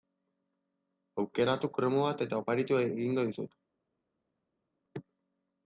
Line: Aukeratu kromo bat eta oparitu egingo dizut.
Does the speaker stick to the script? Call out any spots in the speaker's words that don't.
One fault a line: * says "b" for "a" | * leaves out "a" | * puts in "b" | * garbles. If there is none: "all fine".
all fine